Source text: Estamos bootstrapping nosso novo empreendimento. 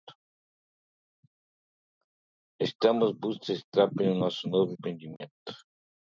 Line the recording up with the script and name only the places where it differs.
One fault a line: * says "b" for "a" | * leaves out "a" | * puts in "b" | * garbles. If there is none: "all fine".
all fine